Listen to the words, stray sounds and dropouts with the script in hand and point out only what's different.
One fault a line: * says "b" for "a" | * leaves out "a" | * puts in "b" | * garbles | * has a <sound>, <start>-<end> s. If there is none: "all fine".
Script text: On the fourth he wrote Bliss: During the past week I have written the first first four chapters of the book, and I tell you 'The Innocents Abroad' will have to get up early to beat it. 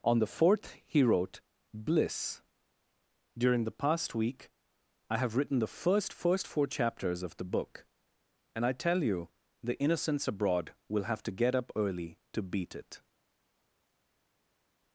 all fine